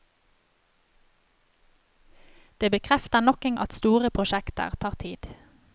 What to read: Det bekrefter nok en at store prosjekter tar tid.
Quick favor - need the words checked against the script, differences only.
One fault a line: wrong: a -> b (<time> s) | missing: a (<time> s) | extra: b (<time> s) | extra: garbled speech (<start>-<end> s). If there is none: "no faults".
no faults